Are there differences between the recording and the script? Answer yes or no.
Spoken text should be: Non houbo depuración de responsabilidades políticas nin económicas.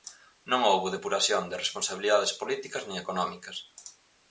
no